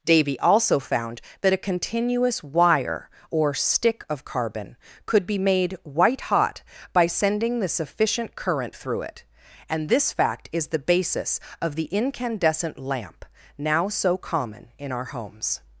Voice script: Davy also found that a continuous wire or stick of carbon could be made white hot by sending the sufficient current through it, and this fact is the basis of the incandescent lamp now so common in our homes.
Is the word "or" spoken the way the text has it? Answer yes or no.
yes